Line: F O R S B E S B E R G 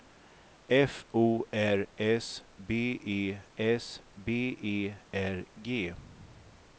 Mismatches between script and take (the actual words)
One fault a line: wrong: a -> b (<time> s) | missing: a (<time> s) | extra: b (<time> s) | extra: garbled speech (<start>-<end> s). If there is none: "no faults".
no faults